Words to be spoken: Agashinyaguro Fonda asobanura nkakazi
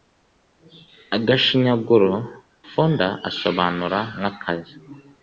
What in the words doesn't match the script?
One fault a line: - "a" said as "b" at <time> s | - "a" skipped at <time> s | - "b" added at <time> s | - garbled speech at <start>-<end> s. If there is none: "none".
none